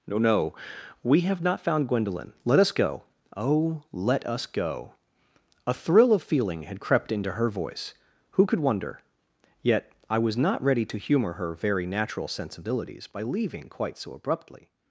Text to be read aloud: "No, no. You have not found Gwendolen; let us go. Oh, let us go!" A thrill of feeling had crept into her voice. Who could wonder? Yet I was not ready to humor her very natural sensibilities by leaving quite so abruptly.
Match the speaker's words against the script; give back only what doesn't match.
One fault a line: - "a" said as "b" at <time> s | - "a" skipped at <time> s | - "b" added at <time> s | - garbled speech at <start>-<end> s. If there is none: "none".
- "You" said as "We" at 1.0 s